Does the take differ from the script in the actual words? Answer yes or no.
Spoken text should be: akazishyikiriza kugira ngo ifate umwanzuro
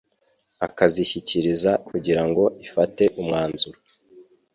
no